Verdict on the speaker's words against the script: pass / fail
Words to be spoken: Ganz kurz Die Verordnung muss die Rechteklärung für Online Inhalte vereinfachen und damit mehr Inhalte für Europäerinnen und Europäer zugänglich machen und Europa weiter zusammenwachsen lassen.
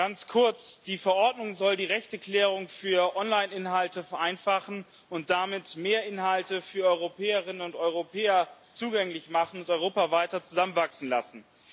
fail